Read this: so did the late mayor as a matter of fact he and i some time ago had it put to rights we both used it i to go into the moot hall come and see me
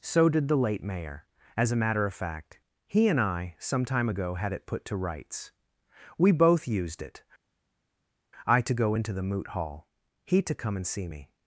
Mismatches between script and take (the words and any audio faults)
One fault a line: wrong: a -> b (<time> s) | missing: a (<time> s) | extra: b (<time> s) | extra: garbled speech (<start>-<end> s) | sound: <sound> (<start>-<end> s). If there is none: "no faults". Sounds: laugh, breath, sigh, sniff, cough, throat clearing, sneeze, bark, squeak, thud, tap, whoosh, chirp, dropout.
extra: he to (10.2 s)